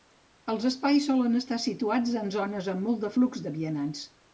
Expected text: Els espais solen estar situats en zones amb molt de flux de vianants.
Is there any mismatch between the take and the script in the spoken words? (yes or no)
no